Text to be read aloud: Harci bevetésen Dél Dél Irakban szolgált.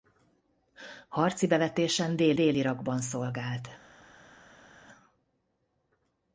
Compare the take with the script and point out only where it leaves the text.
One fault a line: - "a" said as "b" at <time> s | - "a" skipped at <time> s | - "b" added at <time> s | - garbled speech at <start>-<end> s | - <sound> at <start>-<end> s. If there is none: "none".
none